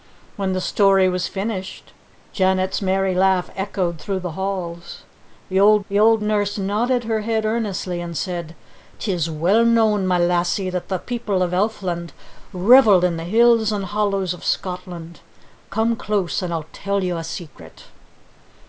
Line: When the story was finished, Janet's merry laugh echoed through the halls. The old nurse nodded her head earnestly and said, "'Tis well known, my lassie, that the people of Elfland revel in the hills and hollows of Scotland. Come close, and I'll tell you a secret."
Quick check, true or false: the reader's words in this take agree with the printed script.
false